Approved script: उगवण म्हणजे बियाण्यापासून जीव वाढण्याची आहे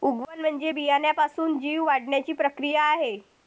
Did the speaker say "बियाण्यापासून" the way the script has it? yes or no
yes